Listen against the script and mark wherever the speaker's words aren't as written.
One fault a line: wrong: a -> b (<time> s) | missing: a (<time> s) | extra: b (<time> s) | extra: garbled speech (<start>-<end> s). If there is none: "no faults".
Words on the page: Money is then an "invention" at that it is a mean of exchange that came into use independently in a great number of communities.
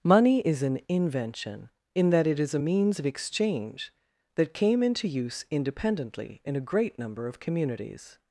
missing: then (0.6 s)
wrong: at -> in (1.9 s)
wrong: mean -> means (2.5 s)